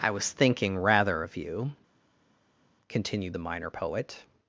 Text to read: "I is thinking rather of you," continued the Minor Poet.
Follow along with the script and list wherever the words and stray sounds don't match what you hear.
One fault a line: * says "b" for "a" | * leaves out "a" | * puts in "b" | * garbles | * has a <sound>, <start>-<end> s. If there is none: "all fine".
* says "was" for "is"